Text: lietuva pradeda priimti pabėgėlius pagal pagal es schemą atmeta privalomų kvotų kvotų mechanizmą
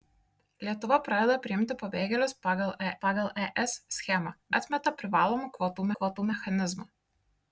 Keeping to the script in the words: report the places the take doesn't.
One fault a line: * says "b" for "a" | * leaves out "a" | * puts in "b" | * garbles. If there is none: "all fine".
all fine